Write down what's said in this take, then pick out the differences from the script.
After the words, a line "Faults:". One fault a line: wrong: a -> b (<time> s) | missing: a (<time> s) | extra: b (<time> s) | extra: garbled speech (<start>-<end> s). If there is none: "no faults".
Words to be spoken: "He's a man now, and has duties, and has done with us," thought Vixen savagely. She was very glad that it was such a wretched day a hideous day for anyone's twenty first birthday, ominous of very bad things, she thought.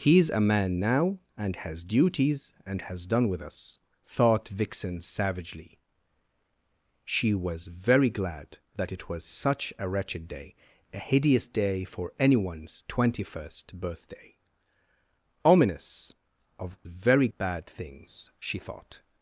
"He's a man now, and has duties, and has done with us," thought Vixen savagely. She was very glad that it was such a wretched day a hideous day for anyone's twenty first birthday, ominous of very bad things, she thought.
Faults:
no faults